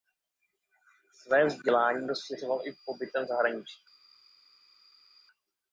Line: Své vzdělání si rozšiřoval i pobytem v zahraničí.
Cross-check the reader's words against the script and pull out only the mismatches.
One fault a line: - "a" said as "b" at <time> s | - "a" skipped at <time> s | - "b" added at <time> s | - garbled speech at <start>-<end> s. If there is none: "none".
- "si" skipped at 2.1 s